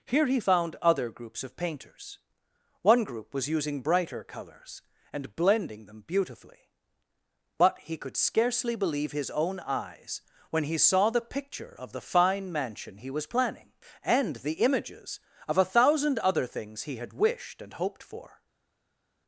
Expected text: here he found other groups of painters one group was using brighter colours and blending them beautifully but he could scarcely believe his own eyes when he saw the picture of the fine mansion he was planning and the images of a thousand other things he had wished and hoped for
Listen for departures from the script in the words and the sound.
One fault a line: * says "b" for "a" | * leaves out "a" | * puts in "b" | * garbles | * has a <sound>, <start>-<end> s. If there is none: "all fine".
all fine